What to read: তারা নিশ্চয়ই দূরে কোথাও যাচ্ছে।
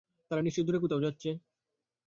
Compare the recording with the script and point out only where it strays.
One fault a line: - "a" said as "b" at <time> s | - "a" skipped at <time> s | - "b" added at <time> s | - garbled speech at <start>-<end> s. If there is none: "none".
none